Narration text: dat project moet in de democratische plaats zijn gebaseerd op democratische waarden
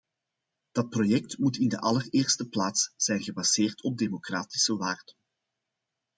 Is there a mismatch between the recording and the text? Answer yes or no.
yes